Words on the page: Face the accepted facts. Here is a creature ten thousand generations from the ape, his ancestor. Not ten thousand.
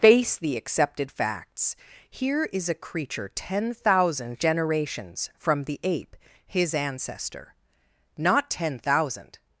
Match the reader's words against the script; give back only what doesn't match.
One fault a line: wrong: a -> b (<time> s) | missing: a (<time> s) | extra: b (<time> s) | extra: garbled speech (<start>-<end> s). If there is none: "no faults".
no faults